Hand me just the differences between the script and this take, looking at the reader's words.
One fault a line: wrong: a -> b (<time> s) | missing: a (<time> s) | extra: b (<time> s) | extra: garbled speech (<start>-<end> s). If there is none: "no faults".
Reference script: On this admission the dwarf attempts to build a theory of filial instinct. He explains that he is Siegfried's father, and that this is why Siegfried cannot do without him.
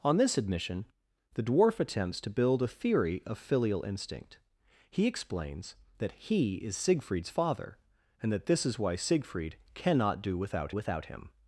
extra: without (10.7 s)